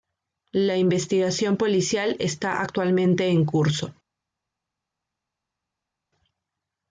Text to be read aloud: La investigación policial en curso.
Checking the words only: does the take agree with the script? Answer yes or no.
no